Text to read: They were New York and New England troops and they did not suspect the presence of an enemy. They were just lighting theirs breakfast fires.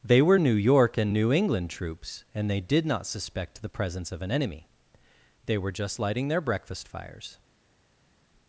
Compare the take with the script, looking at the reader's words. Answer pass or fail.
fail